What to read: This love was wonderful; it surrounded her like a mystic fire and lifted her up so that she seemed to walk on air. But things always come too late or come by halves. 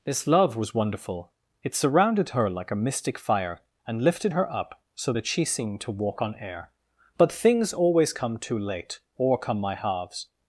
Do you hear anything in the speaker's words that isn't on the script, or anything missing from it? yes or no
yes